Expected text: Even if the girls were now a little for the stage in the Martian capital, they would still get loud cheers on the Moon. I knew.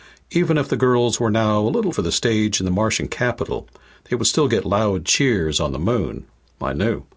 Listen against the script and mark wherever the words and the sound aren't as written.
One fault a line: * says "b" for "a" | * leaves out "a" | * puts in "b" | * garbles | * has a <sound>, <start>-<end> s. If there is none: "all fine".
all fine